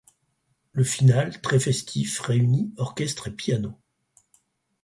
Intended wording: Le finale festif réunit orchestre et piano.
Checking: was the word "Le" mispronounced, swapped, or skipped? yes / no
no